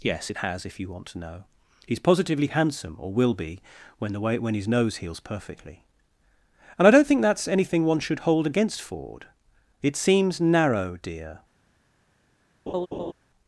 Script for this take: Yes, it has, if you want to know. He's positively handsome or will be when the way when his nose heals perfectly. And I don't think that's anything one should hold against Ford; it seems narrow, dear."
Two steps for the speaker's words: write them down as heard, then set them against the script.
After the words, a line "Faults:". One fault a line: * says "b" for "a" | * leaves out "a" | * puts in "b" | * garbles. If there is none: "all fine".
Yes, it has, if you want to know. He's positively handsome or will be when the way when his nose heals perfectly. And I don't think that's anything one should hold against Ford; it seems narrow, dear."
Faults:
all fine